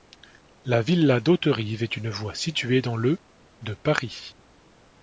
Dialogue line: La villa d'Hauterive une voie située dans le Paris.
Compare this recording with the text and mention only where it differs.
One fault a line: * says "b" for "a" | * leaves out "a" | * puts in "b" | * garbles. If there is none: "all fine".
* puts in "est"
* puts in "de"